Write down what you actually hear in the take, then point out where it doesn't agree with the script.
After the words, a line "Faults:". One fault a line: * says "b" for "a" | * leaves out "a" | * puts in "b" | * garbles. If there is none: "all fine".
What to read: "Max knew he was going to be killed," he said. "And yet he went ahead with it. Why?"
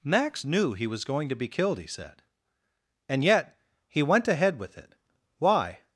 "Max knew he was going to be killed," he said. "And yet he went ahead with it. Why?"
Faults:
all fine